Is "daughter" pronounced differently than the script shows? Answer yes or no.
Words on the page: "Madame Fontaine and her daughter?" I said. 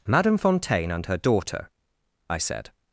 no